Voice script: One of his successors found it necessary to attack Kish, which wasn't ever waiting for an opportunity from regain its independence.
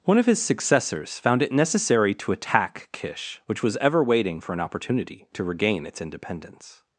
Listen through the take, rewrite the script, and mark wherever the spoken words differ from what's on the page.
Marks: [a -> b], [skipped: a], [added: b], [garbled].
One of his successors found it necessary to attack Kish, which [wasn't -> was] ever waiting for an opportunity [from -> to] regain its independence.